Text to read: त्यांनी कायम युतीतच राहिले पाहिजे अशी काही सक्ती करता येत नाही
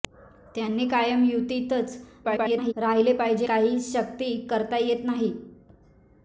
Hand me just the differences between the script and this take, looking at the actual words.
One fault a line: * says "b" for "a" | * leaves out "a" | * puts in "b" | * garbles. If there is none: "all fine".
* garbles
* leaves out "अशी"